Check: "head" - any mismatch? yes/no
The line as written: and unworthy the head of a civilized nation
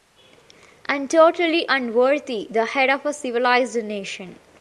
no